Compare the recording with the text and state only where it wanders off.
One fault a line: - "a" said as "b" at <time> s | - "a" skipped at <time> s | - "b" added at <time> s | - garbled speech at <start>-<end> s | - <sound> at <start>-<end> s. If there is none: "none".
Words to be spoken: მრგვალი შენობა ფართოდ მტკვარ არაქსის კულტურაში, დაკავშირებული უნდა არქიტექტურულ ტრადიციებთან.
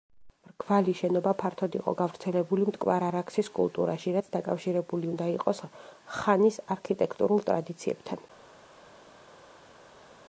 - "იყო გავრცელებული" added at 1.8 s
- "რაც" added at 4.2 s
- "იყოს ხანის" added at 5.4 s